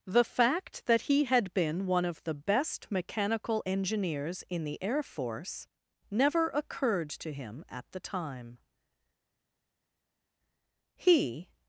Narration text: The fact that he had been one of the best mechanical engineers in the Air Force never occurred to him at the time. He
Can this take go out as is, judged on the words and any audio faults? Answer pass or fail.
pass